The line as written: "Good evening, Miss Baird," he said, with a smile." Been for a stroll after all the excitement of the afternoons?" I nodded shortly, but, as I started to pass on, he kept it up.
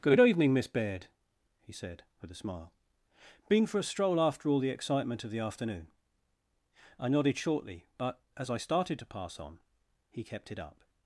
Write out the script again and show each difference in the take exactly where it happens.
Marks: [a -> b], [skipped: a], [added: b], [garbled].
"Good evening, Miss Baird," he said, with a smile." Been for a stroll after all the excitement of the [afternoons?" -> afternoon] I nodded shortly, but, as I started to pass on, he kept it up.